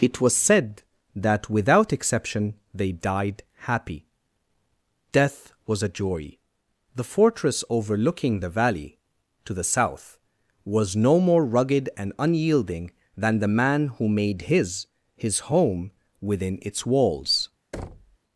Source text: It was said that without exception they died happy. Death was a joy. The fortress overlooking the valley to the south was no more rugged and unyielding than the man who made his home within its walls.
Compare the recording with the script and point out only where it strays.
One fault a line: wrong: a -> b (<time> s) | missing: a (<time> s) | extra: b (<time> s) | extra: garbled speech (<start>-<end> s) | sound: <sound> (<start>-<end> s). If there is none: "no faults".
extra: his (15.2 s)
sound: thud (17.7-18.2 s)